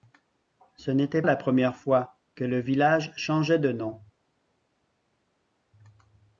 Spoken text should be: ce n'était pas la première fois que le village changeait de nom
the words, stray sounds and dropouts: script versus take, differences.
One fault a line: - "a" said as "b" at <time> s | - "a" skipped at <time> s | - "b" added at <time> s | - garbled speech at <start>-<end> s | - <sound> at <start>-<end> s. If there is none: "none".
- "pas" skipped at 1.2 s